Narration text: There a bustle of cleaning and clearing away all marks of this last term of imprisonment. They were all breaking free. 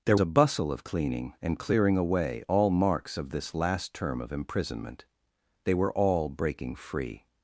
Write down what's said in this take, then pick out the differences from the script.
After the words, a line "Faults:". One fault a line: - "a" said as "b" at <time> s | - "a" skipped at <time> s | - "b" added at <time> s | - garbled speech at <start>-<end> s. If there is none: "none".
There a bustle of cleaning and clearing away all marks of this last term of imprisonment. They were all breaking free.
Faults:
none